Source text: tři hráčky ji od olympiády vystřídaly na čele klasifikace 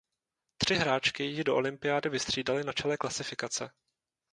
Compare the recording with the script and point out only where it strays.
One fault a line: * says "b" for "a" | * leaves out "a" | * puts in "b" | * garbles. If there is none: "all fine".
* says "do" for "od"